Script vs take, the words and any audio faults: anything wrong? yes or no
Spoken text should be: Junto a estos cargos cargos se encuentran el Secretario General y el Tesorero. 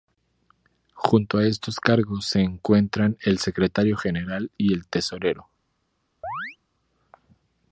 yes